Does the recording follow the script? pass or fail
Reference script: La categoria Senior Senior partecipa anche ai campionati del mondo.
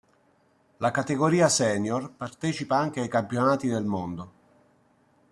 fail